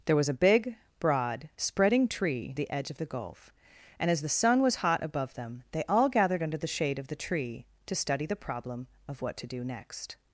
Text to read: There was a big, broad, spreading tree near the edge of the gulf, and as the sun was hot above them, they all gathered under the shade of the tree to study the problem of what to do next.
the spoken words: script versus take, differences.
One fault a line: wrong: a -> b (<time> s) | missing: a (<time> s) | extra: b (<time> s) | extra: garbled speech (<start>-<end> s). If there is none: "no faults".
missing: near (2.5 s)